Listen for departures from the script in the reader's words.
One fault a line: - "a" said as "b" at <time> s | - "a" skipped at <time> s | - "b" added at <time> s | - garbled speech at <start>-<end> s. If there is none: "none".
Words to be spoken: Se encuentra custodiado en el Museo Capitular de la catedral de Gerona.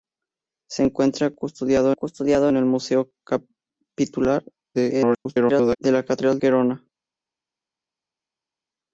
- "custodiado" added at 1.9 s
- garbled speech at 4.7-5.8 s
- "de" skipped at 6.4 s